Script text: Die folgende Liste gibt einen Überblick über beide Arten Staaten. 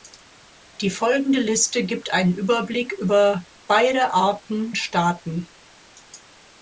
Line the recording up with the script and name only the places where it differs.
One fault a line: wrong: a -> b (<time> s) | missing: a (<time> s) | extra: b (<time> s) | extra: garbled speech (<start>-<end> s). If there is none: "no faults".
no faults